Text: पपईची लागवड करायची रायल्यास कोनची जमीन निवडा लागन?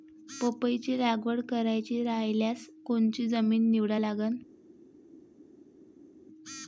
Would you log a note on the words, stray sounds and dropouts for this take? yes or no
no